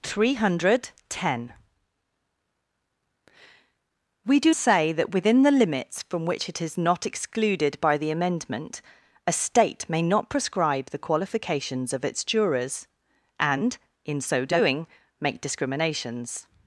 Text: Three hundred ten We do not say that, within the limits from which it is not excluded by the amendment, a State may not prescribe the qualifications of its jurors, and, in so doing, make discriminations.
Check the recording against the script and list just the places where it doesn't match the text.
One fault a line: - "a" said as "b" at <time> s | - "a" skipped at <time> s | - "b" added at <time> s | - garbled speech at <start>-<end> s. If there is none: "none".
- "not" skipped at 4.5 s